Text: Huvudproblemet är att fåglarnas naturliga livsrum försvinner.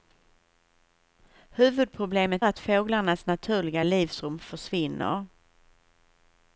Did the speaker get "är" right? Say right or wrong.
wrong